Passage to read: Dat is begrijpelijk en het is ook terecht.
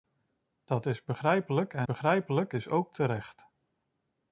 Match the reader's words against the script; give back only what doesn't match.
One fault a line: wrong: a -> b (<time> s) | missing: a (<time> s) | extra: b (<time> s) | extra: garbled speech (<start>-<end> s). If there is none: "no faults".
wrong: het -> begrijpelijk (1.8 s)